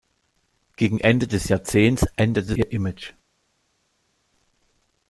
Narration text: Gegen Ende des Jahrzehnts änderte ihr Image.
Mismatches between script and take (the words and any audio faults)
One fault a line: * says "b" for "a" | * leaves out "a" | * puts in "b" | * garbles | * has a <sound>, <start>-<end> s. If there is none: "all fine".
all fine